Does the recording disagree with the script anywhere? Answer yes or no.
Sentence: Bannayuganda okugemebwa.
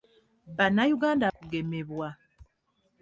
no